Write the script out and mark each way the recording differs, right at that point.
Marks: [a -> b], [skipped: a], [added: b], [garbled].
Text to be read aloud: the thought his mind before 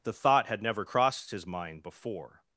the thought [added: had never crossed] his mind before